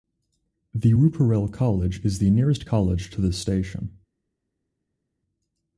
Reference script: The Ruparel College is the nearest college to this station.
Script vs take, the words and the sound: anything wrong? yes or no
no